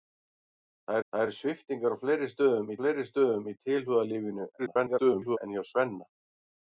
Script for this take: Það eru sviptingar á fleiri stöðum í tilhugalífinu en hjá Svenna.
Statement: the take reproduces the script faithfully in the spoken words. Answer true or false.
false